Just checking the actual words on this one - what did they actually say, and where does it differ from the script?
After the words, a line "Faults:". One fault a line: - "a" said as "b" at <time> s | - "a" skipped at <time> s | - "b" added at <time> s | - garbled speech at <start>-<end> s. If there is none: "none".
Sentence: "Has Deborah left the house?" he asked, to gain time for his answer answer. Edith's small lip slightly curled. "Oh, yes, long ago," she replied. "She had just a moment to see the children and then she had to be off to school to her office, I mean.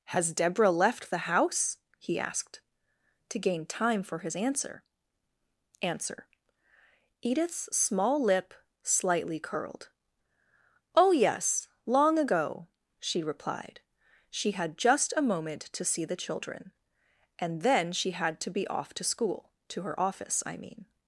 "Has Deborah left the house?" he asked, to gain time for his answer answer. Edith's small lip slightly curled. "Oh, yes, long ago," she replied. "She had just a moment to see the children and then she had to be off to school to her office, I mean.
Faults:
none